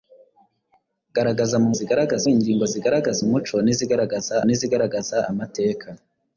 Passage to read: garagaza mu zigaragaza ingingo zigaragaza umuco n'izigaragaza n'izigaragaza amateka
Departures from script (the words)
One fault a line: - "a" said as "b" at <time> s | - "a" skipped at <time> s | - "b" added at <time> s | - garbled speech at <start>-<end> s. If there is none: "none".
none